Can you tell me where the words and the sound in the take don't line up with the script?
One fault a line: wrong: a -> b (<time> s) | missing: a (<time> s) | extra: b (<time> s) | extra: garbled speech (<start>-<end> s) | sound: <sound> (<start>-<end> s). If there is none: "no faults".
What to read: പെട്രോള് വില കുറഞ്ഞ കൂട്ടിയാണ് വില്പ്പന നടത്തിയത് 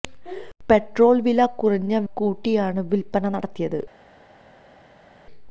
no faults